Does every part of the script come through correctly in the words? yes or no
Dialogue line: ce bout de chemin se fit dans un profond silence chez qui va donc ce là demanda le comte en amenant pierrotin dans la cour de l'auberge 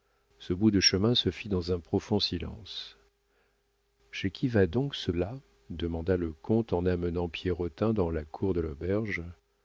yes